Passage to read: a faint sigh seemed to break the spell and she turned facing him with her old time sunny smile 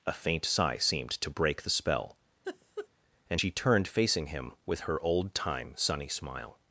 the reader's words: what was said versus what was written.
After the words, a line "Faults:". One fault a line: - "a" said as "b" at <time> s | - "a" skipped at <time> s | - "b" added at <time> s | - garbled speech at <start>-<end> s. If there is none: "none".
a faint sigh seemed to break the spell and she turned facing him with her old time sunny smile
Faults:
none